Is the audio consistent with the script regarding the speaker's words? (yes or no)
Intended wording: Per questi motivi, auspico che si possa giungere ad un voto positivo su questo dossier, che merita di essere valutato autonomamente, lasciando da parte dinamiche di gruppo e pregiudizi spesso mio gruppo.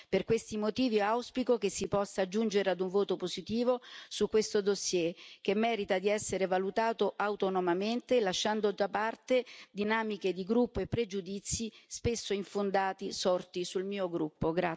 no